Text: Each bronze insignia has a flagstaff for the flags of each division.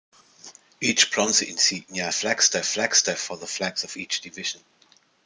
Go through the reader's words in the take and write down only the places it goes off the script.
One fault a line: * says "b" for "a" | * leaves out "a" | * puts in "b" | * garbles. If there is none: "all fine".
* says "flagstaff" for "has"